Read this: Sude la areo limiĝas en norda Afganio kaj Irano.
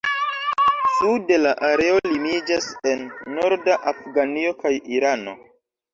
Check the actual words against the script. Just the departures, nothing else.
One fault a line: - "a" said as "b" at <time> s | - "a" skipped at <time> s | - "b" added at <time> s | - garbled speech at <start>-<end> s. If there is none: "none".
none